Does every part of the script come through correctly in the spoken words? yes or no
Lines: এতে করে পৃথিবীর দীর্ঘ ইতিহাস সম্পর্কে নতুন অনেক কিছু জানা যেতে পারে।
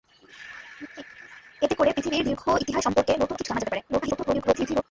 no